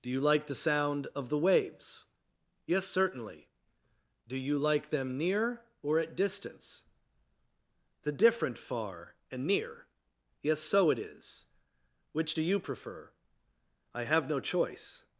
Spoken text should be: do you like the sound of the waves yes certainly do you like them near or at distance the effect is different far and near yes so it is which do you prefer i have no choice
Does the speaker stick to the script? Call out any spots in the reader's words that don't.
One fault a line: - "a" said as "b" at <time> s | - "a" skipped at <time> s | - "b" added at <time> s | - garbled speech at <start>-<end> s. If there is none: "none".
- "effect is" skipped at 8.1 s